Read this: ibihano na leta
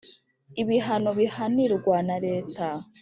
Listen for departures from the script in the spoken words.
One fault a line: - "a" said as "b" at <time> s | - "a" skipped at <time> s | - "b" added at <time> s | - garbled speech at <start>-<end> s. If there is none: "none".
- "bihanirwa" added at 1.2 s